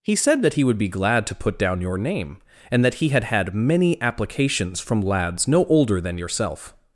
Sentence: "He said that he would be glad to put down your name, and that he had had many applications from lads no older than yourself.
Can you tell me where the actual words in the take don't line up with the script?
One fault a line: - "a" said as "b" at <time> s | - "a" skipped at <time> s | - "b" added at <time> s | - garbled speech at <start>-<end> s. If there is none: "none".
none